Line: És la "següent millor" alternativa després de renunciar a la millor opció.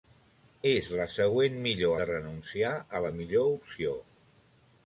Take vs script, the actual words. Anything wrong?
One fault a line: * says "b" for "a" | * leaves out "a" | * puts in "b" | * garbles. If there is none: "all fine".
* leaves out "alternativa després"